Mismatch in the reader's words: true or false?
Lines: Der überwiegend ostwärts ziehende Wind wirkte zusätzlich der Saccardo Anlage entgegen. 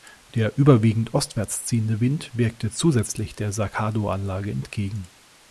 false